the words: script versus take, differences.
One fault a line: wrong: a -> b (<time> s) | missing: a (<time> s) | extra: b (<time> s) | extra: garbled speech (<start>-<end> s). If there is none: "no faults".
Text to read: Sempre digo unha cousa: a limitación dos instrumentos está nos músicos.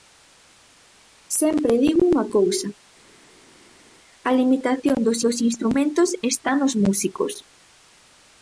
extra: dos (5.2 s)